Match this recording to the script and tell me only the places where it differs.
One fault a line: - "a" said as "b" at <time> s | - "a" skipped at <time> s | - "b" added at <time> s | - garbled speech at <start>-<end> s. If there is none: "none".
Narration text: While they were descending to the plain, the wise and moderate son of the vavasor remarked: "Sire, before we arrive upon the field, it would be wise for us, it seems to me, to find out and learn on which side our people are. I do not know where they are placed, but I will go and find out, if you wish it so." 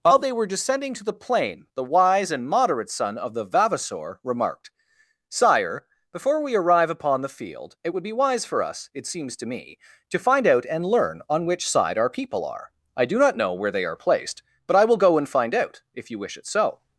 none